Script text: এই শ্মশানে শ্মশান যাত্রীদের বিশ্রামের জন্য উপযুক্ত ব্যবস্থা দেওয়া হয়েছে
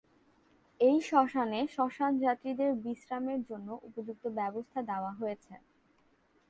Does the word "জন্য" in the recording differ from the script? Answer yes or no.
no